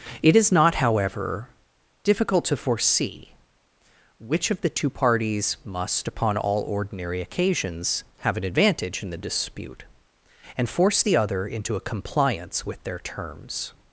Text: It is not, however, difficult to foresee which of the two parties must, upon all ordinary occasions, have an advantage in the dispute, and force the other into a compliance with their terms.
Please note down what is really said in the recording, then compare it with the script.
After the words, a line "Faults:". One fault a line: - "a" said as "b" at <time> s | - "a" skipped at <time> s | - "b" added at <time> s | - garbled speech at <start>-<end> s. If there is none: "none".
It is not, however, difficult to foresee which of the two parties must, upon all ordinary occasions, have an advantage in the dispute, and force the other into a compliance with their terms.
Faults:
none